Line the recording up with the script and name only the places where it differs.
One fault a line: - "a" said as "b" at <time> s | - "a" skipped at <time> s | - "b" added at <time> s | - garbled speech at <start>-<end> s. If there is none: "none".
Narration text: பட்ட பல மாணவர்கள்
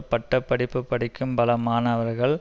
- "படிப்பு படிக்கும்" added at 0.4 s